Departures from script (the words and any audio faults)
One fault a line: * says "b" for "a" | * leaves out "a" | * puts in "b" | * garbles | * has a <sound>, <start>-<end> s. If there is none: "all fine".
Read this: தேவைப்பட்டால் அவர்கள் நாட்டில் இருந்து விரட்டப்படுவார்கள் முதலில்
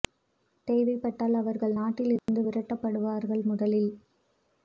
* has a dropout, 2.2-2.3 s